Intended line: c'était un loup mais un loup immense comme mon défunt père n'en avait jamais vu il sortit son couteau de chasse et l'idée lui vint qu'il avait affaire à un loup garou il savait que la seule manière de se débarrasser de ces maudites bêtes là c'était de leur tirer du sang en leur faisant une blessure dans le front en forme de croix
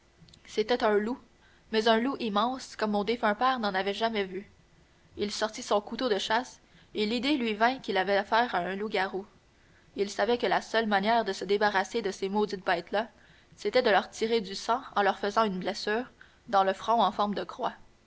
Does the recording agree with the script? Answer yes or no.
yes